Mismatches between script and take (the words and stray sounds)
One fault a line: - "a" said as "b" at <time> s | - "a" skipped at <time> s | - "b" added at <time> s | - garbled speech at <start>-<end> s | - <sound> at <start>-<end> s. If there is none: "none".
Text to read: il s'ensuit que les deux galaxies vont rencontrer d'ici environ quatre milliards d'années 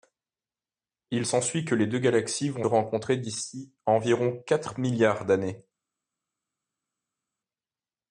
none